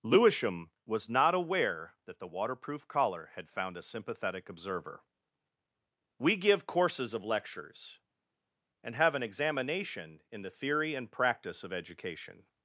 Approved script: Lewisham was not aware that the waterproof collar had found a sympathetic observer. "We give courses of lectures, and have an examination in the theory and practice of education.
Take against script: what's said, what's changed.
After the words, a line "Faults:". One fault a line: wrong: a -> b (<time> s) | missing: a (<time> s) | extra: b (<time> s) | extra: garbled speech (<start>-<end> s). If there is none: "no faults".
Lewisham was not aware that the waterproof collar had found a sympathetic observer. "We give courses of lectures, and have an examination in the theory and practice of education.
Faults:
no faults